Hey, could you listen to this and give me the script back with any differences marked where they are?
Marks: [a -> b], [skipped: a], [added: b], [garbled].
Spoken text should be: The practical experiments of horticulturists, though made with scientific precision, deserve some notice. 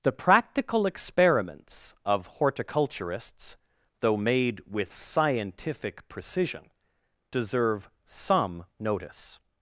The practical experiments of horticulturists, though made with scientific precision, deserve some notice.